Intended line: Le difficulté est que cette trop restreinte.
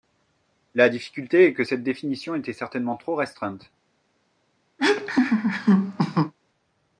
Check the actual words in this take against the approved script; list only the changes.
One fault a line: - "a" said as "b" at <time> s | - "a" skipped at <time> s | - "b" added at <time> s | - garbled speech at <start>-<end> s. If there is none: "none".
- "Le" said as "La" at 0.7 s
- "définition était certainement" added at 1.8 s